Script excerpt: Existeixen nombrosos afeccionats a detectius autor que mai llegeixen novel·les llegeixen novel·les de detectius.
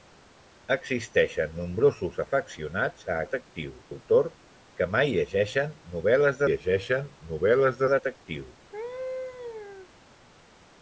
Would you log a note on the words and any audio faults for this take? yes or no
yes